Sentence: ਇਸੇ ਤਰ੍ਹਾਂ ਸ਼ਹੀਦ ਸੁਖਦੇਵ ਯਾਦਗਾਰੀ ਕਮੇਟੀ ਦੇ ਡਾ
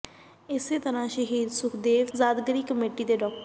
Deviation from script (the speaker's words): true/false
false